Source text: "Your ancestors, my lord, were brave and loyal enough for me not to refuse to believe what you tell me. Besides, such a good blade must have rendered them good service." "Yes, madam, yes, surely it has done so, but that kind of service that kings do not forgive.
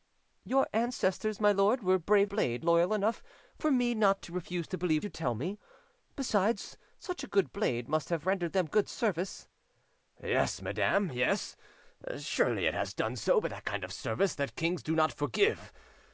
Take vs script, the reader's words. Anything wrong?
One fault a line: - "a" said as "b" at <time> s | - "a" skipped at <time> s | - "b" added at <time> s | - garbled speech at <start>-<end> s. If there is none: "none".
- "and" said as "blade" at 2.3 s
- "what" skipped at 5.0 s